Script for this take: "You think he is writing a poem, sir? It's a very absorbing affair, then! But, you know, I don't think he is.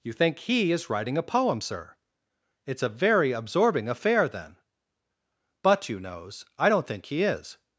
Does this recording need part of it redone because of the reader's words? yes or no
yes